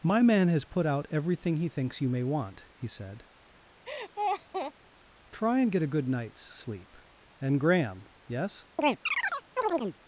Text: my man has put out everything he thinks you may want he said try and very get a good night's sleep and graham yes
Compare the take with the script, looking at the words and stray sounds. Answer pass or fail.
fail